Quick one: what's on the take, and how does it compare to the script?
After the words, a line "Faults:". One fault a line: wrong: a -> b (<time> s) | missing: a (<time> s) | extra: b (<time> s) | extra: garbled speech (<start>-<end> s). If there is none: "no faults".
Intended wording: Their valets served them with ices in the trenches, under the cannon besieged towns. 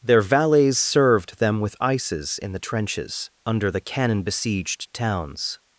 Their valets served them with ices in the trenches, under the cannon besieged towns.
Faults:
no faults